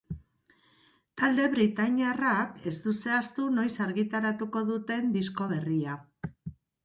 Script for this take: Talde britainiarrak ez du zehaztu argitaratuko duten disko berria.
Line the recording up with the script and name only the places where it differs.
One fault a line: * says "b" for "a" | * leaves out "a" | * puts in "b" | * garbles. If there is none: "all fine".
* puts in "noiz"